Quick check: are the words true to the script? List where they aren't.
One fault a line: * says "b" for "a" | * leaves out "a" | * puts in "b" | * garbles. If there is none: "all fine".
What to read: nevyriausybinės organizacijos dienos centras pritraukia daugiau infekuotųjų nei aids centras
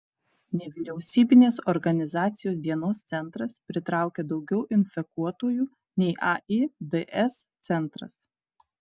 all fine